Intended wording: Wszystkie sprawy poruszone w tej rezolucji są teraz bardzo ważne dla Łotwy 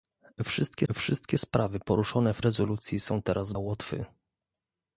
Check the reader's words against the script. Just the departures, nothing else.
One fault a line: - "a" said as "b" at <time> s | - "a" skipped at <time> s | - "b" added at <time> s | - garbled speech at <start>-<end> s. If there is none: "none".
- "wszystkie" added at 0.9 s
- "tej" skipped at 2.4 s
- "bardzo ważne dla" skipped at 3.5 s